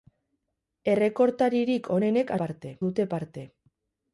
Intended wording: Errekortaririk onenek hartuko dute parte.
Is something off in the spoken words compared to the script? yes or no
yes